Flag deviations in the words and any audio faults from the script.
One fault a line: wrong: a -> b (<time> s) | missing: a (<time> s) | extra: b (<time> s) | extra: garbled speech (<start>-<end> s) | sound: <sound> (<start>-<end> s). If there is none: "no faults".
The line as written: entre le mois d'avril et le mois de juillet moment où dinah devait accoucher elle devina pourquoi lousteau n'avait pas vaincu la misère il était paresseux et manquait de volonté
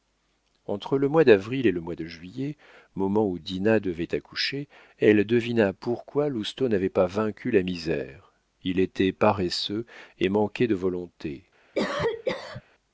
sound: cough (11.7-12.6 s)